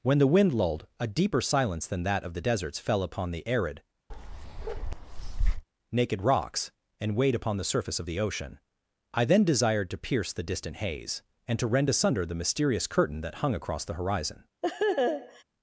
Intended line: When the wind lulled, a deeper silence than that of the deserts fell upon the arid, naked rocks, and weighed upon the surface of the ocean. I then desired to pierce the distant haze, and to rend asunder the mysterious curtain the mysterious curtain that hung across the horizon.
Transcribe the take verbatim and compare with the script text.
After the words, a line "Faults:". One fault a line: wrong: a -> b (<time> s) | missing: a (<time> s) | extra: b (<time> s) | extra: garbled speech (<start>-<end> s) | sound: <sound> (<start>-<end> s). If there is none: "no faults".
When the wind lulled, a deeper silence than that of the deserts fell upon the arid, naked rocks, and weighed upon the surface of the ocean. I then desired to pierce the distant haze, and to rend asunder the mysterious curtain that hung across the horizon.
Faults:
sound: bark (4.1-5.6 s)
missing: the mysterious curtain (13.2 s)
sound: laugh (14.6-15.4 s)